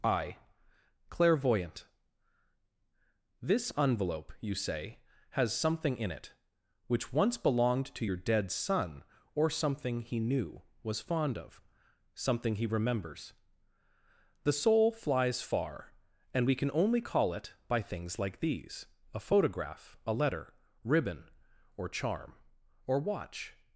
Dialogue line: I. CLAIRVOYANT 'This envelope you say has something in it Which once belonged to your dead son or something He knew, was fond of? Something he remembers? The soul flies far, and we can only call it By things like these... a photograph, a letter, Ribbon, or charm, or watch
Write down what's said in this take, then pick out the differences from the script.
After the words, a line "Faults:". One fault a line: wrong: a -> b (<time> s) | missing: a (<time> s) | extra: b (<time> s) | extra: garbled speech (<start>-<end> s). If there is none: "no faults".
I. CLAIRVOYANT 'This envelope you say has something in it Which once belonged to your dead son or something He knew, was fond of? Something he remembers? The soul flies far, and we can only call it By things like these... a photograph, a letter, Ribbon, or charm, or watch
Faults:
no faults